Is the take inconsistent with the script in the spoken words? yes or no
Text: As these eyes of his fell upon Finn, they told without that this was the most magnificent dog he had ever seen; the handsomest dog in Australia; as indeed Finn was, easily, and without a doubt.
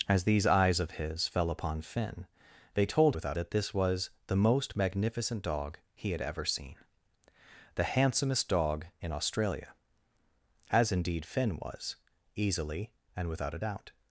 no